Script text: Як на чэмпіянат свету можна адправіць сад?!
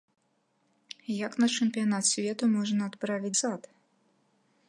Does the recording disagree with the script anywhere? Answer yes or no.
no